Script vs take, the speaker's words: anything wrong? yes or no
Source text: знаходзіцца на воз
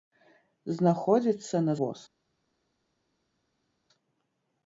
no